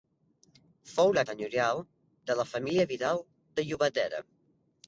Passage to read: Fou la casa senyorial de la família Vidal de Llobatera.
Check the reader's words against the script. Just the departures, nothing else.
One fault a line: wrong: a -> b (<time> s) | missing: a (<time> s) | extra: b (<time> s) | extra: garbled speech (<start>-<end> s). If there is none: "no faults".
missing: casa (1.2 s)